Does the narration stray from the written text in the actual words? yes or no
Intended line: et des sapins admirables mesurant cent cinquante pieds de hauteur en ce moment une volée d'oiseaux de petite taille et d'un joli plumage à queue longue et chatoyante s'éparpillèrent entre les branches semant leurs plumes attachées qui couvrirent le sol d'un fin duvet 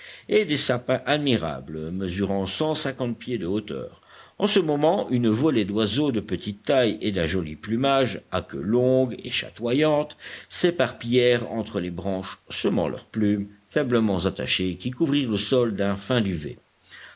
yes